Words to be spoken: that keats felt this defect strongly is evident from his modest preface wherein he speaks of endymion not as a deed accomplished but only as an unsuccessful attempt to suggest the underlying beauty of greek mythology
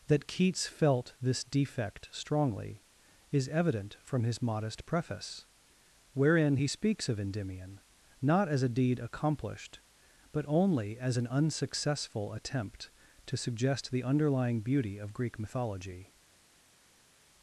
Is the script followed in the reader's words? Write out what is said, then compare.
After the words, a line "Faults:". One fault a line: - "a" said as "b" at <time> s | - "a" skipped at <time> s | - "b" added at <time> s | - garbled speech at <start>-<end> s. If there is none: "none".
that keats felt this defect strongly is evident from his modest preface wherein he speaks of endymion not as a deed accomplished but only as an unsuccessful attempt to suggest the underlying beauty of greek mythology
Faults:
none